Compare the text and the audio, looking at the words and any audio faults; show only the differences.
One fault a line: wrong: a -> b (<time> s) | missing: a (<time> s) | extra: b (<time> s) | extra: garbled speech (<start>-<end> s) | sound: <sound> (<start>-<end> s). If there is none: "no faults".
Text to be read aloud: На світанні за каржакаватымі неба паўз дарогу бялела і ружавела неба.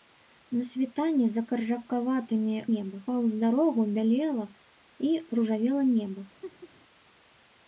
sound: laugh (6.4-6.7 s)